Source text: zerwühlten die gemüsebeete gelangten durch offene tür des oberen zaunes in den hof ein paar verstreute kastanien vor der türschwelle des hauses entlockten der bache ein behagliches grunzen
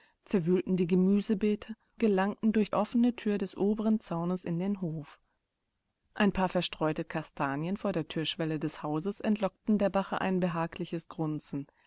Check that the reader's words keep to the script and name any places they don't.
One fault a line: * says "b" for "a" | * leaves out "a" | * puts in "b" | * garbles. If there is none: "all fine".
all fine